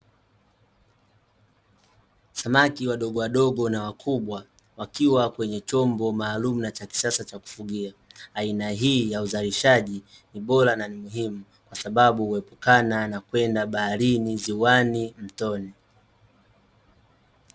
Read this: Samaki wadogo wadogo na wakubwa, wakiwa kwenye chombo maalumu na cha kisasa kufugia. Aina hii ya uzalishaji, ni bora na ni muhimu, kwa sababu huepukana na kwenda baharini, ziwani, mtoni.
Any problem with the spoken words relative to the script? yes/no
yes